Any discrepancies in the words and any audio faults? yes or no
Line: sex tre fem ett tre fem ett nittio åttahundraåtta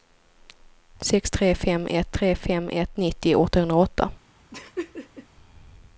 yes